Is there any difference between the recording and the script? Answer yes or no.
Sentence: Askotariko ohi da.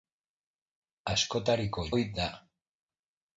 no